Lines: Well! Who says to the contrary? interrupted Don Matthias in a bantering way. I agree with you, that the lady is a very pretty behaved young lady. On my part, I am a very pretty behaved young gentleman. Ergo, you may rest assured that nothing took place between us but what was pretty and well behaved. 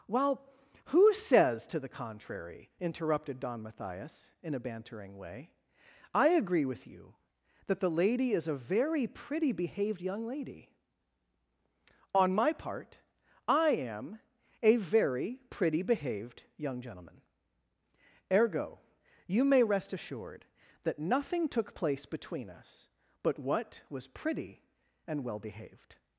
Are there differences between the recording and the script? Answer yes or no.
no